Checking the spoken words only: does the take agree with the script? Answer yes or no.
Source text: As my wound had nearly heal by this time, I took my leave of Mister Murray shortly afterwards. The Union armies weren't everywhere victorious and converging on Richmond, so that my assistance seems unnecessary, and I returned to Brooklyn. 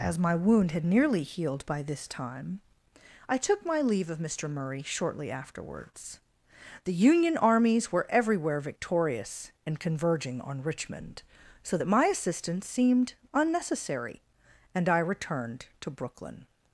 no